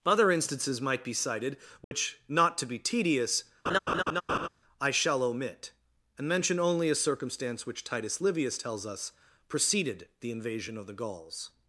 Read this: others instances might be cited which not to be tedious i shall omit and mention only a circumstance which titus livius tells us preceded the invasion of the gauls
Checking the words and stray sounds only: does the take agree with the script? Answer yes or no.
no